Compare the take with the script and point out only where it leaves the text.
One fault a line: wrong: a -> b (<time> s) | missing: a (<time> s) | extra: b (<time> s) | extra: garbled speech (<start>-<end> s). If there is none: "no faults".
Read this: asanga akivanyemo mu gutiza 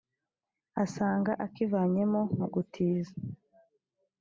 no faults